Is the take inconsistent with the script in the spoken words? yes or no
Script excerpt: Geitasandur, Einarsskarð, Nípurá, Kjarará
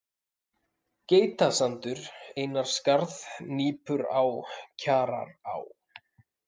no